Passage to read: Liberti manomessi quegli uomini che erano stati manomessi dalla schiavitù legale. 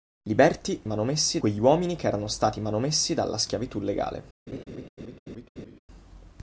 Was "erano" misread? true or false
false